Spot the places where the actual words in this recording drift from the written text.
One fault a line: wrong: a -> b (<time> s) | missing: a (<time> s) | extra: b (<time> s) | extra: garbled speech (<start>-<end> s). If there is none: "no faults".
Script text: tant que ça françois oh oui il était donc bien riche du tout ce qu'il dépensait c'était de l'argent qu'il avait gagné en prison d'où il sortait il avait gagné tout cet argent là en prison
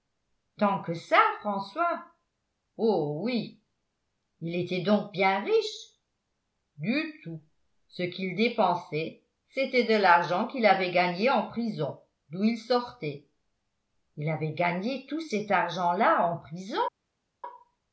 no faults